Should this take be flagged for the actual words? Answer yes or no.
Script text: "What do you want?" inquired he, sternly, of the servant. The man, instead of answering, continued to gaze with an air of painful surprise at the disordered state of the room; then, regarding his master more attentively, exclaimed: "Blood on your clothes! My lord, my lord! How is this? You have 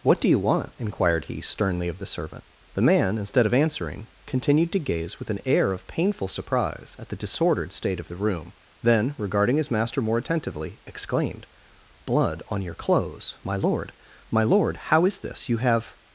no